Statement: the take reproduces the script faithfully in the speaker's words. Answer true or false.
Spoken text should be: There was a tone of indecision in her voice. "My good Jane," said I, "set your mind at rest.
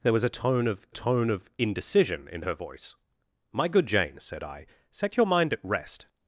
false